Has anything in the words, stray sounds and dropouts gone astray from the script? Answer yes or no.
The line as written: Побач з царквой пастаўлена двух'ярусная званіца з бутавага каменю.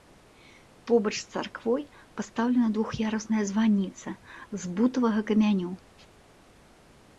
no